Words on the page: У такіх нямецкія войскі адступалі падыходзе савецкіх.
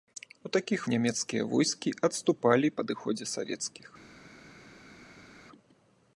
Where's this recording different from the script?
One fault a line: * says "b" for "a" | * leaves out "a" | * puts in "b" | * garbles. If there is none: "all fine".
all fine